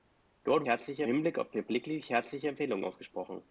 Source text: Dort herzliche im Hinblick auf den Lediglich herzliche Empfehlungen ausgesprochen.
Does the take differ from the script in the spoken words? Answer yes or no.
no